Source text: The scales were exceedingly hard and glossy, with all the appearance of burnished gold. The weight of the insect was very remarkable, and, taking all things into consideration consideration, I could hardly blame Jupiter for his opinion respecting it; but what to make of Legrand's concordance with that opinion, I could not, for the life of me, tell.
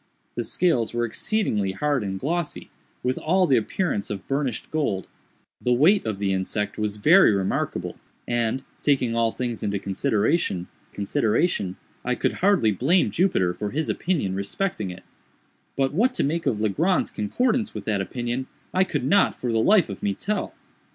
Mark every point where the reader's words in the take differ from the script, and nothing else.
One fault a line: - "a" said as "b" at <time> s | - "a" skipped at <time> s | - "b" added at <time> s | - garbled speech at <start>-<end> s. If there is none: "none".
none